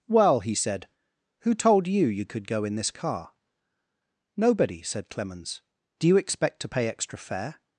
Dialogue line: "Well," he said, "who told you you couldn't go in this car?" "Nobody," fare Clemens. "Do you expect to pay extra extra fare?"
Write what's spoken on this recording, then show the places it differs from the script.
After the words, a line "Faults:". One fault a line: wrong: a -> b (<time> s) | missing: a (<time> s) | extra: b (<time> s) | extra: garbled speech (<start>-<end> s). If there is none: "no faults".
"Well," he said, "who told you you could go in this car?" "Nobody," said Clemens. "Do you expect to pay extra fare?"
Faults:
wrong: couldn't -> could (2.2 s)
wrong: fare -> said (4.8 s)
missing: extra (7.2 s)